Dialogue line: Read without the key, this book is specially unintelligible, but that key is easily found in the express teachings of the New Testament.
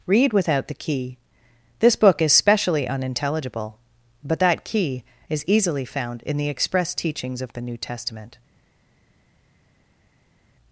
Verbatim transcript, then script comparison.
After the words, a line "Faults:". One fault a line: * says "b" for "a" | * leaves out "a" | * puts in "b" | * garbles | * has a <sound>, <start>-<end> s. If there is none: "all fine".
Read without the key, this book is specially unintelligible, but that key is easily found in the express teachings of the New Testament.
Faults:
all fine